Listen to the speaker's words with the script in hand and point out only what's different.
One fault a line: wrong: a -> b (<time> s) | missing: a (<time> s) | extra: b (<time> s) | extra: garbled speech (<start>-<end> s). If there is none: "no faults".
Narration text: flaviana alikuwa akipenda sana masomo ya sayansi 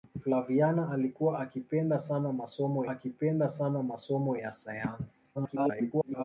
extra: akipenda sana masomo (2.9 s)
extra: garbled speech (5.3-6.2 s)